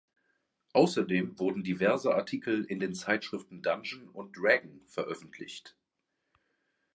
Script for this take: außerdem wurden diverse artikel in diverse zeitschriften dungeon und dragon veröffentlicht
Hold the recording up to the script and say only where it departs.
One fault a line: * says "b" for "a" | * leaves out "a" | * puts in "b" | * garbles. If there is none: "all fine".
* says "den" for "diverse"